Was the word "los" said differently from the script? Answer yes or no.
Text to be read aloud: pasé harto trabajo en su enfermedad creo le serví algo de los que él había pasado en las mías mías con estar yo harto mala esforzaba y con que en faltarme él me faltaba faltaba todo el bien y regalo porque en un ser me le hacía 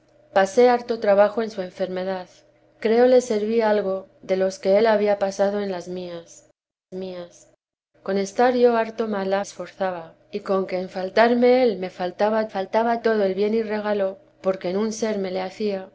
no